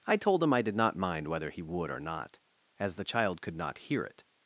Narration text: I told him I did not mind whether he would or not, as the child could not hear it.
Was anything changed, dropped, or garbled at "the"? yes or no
no